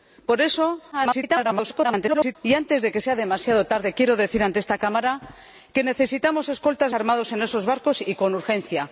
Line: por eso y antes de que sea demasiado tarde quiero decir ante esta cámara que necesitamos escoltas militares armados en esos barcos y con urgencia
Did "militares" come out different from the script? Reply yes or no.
yes